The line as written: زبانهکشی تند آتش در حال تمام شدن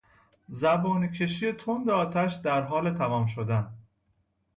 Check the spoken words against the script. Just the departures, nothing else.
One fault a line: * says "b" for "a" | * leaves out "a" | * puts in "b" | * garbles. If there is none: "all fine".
all fine